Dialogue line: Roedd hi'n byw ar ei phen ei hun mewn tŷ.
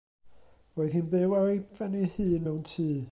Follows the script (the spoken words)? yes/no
yes